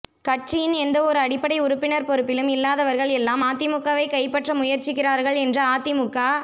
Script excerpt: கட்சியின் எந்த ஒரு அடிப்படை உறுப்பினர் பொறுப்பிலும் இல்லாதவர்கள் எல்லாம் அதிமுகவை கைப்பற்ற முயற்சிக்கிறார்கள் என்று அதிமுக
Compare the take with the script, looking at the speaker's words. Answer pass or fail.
pass